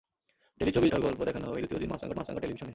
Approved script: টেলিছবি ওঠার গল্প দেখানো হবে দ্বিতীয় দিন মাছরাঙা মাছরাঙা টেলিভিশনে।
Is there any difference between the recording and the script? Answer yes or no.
no